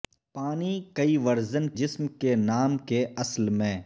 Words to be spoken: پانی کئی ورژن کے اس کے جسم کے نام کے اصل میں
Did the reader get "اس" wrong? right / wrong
wrong